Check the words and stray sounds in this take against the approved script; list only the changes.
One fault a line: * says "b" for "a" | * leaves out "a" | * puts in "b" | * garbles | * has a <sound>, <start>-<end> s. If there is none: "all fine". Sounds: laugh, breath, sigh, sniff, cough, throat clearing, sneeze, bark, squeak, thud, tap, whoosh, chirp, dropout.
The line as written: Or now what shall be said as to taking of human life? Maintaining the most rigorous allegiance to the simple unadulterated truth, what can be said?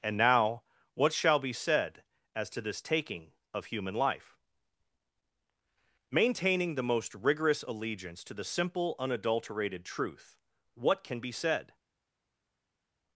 * says "And" for "Or"
* puts in "this"